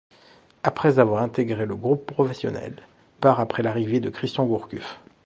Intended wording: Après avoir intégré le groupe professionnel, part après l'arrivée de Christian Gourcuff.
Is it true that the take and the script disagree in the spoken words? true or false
false